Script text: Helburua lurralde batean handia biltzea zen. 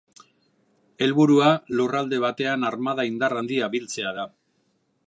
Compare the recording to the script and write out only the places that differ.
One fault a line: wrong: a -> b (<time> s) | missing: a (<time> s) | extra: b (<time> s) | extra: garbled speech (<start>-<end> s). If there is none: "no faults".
extra: armada indar (2.7 s)
wrong: zen -> da (4.2 s)